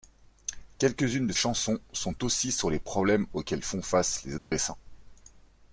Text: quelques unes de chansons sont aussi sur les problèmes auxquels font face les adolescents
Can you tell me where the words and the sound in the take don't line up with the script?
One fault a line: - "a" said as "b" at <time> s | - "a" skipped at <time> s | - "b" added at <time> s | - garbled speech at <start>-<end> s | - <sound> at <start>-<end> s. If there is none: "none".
- dropout at 4.4-4.5 s